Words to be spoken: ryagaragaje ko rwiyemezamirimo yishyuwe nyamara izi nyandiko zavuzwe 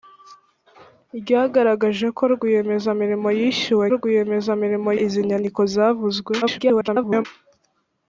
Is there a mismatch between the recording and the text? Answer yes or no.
yes